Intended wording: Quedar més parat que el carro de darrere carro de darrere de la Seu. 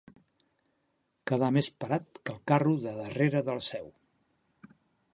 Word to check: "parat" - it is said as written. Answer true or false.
true